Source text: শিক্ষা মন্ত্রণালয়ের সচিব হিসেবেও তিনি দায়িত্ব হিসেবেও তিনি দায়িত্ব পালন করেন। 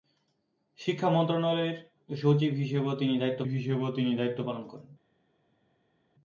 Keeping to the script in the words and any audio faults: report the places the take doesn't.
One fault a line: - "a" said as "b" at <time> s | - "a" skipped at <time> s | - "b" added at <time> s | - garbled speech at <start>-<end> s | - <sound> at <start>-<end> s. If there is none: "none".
none